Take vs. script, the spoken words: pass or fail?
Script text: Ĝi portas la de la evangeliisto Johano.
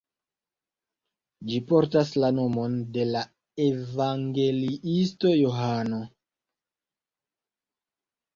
fail